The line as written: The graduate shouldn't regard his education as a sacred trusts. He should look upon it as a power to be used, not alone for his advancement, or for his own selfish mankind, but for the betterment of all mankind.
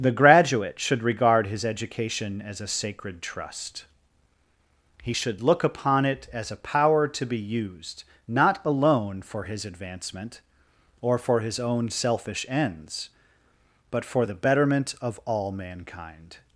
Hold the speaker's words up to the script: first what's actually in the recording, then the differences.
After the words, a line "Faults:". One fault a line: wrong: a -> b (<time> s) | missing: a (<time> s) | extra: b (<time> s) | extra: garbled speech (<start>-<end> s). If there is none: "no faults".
The graduate should regard his education as a sacred trust. He should look upon it as a power to be used, not alone for his advancement, or for his own selfish ends, but for the betterment of all mankind.
Faults:
wrong: shouldn't -> should (0.8 s)
wrong: trusts -> trust (3.2 s)
wrong: mankind -> ends (12.5 s)